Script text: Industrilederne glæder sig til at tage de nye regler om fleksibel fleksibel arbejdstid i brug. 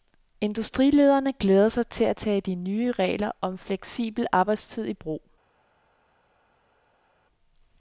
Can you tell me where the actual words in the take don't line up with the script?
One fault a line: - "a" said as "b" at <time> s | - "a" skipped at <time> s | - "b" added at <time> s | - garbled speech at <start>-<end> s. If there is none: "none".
- "fleksibel" skipped at 4.3 s